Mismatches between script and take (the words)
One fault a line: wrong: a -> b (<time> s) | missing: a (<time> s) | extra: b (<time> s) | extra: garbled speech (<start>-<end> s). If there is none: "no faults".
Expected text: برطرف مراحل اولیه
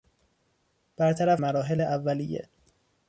no faults